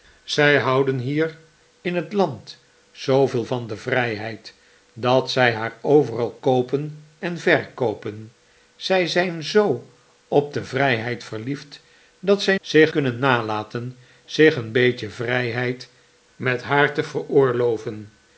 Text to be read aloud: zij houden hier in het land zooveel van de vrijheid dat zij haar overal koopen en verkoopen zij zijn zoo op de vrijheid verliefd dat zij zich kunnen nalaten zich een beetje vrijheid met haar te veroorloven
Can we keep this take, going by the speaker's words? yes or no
yes